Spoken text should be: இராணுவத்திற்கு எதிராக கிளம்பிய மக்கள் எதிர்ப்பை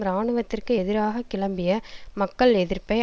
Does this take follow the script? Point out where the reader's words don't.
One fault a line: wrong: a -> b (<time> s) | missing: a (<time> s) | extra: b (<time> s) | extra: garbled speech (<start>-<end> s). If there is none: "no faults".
no faults